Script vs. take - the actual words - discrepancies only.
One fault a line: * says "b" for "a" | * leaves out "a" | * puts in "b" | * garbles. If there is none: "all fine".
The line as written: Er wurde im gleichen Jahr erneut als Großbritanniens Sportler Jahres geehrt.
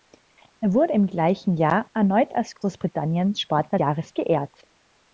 all fine